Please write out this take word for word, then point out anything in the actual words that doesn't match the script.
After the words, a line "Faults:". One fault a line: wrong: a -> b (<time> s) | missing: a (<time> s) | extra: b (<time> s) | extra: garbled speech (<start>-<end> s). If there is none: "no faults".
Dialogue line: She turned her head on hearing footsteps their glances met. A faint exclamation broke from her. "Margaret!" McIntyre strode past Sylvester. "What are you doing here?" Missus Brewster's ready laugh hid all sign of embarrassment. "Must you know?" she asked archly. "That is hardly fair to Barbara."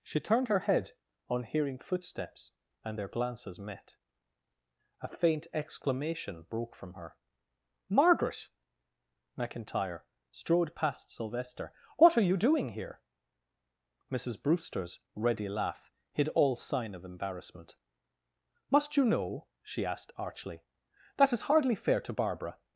She turned her head on hearing footsteps and their glances met. A faint exclamation broke from her. "Margaret!" McIntyre strode past Sylvester. "What are you doing here?" Missus Brewster's ready laugh hid all sign of embarrassment. "Must you know?" she asked archly. "That is hardly fair to Barbara."
Faults:
extra: and (2.8 s)